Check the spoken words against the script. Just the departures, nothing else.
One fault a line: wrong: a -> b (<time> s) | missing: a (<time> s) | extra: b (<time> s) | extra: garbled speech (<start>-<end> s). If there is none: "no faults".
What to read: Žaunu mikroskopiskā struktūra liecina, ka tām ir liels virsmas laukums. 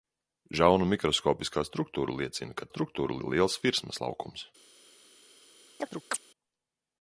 wrong: tām -> struktūra (2.7 s)